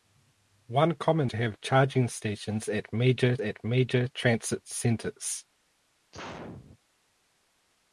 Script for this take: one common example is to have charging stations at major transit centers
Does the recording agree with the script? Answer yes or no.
no